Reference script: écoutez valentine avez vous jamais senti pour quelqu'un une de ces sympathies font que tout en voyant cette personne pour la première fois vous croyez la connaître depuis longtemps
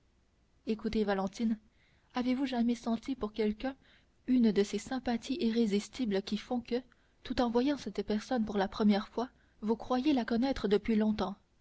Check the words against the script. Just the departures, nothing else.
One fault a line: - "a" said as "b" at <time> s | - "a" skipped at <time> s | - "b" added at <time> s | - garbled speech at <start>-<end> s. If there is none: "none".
- "irrésistibles qui" added at 5.4 s